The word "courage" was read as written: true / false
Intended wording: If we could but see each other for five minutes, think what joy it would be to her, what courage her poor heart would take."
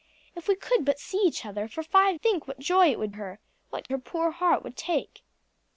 false